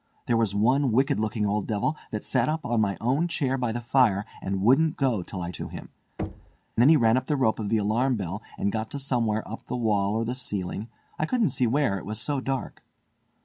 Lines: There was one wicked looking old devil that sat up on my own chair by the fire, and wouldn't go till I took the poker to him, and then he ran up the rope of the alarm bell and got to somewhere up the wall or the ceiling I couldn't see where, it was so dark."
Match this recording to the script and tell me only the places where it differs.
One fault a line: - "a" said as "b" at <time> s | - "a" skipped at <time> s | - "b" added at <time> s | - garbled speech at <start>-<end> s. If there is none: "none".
- "took the poker" skipped at 5.5 s
- "and" skipped at 5.9 s